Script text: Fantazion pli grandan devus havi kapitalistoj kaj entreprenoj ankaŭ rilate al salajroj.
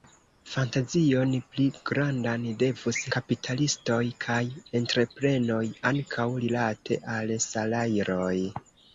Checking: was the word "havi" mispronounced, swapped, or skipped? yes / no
yes